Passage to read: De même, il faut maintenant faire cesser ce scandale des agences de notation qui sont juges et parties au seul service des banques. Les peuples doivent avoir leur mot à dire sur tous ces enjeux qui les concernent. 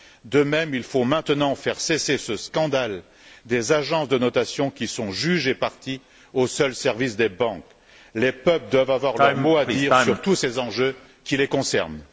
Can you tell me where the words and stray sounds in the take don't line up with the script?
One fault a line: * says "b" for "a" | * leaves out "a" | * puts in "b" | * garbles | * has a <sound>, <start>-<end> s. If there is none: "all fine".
all fine